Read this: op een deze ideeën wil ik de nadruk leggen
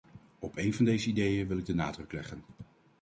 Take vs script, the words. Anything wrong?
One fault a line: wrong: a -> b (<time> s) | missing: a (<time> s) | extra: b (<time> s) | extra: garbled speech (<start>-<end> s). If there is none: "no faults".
extra: van (0.7 s)